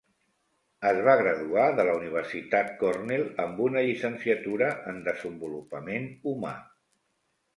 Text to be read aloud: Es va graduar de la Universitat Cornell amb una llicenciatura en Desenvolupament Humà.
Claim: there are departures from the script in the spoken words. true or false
false